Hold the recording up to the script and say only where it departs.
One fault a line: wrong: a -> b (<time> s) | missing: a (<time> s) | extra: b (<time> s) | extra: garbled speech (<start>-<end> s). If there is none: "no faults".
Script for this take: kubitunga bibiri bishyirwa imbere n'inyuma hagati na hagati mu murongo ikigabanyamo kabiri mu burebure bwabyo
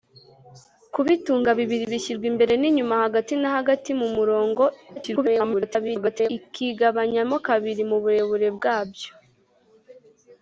extra: garbled speech (5.0-6.3 s)